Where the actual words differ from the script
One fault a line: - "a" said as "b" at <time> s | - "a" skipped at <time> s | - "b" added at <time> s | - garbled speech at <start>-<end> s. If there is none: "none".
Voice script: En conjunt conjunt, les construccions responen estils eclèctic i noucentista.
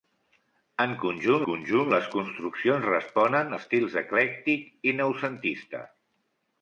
none